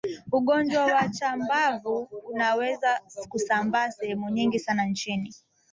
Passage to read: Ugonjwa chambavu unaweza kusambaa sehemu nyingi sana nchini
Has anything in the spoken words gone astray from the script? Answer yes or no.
yes